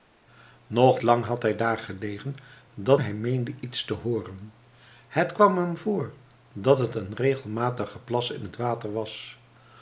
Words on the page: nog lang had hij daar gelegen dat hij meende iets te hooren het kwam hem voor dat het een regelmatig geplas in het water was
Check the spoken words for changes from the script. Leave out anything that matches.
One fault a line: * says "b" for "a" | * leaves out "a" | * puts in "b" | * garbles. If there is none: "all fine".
all fine